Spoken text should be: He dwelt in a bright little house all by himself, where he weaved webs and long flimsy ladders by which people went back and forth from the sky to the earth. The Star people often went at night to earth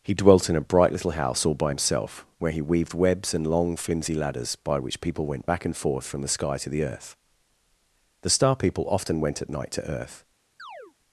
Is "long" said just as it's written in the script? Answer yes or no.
yes